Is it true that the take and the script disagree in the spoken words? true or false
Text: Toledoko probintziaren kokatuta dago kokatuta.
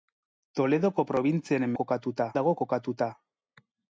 false